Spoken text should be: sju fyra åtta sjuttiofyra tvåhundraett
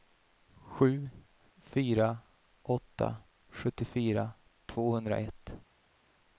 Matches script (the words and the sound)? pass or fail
pass